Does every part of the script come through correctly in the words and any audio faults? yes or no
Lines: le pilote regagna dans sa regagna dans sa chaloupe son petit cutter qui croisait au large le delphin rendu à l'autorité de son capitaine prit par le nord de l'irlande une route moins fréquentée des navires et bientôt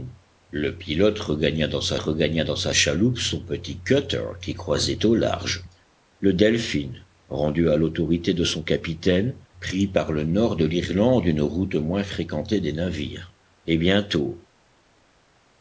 yes